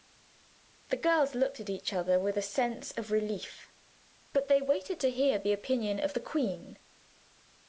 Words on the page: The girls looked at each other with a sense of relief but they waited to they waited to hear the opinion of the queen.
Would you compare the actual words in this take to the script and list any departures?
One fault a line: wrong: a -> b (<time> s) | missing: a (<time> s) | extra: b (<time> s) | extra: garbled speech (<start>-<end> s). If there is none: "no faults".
missing: they waited to (5.1 s)